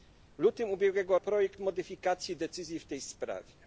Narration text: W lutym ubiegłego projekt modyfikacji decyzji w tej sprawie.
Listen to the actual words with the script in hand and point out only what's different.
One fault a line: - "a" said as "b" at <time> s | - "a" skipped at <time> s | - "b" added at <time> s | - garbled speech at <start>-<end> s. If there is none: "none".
none